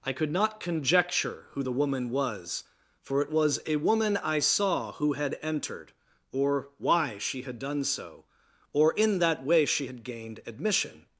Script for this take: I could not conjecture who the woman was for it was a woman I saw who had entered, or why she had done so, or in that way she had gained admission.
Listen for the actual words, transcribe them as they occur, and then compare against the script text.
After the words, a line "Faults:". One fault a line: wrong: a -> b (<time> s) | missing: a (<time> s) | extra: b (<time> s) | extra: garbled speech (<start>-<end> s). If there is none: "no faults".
I could not conjecture who the woman was for it was a woman I saw who had entered, or why she had done so, or in that way she had gained admission.
Faults:
no faults